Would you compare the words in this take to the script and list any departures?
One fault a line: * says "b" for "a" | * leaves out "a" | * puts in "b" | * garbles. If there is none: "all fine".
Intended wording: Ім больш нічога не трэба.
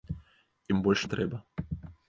* leaves out "нічога"